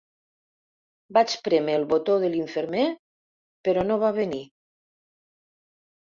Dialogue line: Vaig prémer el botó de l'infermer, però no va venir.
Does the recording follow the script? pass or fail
pass